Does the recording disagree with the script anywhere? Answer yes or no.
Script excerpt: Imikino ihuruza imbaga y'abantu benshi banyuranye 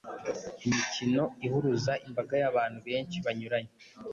no